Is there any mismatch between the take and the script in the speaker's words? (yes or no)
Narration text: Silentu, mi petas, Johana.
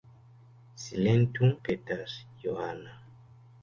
yes